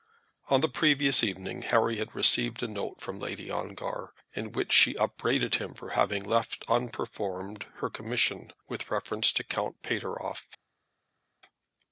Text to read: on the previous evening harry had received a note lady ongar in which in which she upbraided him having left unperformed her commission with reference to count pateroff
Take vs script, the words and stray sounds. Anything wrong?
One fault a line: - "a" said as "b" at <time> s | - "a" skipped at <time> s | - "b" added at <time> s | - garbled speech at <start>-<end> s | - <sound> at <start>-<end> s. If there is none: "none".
- "from" added at 3.0 s
- "in which" skipped at 4.7 s
- "for" added at 5.8 s